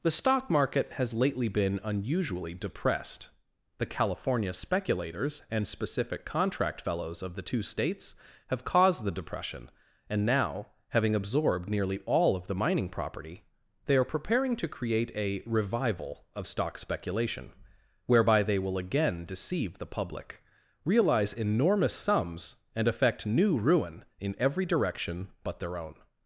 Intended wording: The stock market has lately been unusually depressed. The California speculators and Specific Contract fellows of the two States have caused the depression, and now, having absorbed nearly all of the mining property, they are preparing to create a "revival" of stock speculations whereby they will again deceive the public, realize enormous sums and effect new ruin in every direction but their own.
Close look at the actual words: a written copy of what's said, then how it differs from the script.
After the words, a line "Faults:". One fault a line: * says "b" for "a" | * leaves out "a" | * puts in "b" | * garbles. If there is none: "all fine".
The stock market has lately been unusually depressed. The California speculators and Specific Contract fellows of the two States have caused the depression, and now, having absorbed nearly all of the mining property, they are preparing to create a "revival" of stock speculation whereby they will again deceive the public, realize enormous sums and effect new ruin in every direction but their own.
Faults:
* says "speculation" for "speculations"